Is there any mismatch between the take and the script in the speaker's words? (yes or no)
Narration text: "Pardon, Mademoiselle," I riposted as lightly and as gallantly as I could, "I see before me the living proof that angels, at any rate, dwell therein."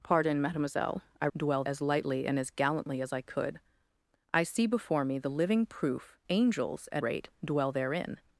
yes